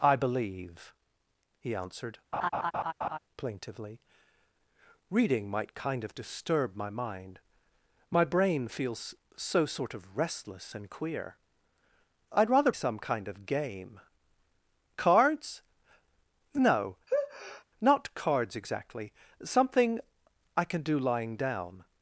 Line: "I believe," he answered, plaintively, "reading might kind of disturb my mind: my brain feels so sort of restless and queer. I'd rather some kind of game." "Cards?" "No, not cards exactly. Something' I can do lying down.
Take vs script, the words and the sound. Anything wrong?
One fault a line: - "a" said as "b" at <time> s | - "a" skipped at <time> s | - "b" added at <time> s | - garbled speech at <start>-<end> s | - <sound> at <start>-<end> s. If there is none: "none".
- laugh at 2.3-3.2 s
- sneeze at 17.1-17.6 s